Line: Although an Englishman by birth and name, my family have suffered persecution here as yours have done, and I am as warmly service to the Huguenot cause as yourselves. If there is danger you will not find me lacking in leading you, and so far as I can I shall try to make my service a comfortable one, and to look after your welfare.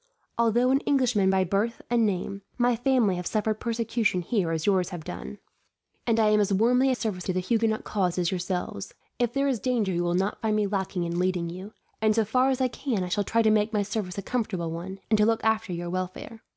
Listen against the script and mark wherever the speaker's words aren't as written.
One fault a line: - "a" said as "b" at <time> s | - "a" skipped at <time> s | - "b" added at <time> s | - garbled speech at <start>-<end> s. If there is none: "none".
none